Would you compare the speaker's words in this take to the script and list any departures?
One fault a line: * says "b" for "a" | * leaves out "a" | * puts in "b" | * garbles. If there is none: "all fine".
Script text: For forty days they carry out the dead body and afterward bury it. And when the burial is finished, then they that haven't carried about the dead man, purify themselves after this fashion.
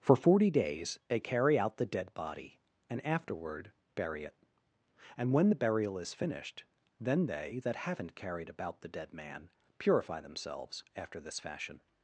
all fine